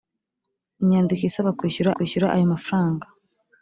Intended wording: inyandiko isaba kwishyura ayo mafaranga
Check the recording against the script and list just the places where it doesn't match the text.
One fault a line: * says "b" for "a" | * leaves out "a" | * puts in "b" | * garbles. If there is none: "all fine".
* puts in "kwishyura"